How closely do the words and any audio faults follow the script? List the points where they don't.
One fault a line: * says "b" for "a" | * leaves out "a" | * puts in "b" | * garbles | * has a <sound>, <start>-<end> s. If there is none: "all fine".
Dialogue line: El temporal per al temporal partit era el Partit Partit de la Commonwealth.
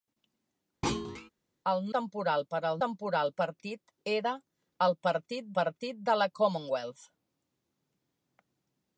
* has a thud, 0.8-1.3 s